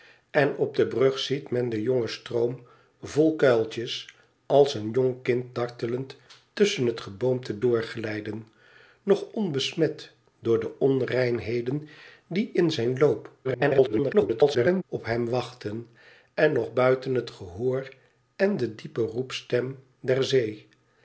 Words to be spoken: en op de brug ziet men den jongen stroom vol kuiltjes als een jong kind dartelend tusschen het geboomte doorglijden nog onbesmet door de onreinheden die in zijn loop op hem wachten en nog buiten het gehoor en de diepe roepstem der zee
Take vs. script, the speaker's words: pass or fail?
fail